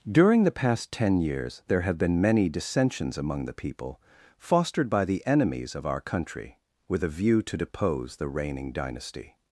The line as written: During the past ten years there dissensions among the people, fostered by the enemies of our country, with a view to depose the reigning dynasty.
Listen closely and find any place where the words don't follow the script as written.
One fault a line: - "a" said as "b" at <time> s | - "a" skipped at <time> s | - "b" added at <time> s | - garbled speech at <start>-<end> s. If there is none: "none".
- "have been many" added at 1.8 s